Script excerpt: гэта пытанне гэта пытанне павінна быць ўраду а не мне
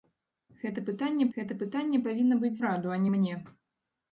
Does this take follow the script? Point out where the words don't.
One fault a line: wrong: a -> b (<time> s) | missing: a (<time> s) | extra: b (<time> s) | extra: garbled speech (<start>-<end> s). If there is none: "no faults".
no faults